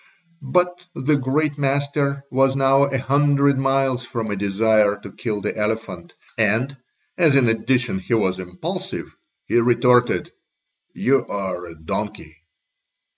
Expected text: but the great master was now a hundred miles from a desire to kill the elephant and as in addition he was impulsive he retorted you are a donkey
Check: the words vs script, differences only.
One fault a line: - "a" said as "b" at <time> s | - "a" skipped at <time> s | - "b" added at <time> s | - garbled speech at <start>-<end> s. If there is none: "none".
none